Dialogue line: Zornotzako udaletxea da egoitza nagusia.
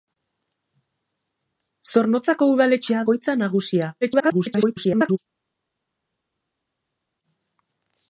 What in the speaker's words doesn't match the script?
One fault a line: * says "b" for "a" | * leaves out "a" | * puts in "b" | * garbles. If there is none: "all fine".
* leaves out "da"
* garbles